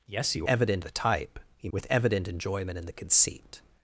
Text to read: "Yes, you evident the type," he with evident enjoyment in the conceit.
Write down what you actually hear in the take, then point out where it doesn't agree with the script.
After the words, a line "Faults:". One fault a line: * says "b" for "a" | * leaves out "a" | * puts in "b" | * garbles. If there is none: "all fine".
"Yes, you evident the type," he with evident enjoyment in the conceit.
Faults:
all fine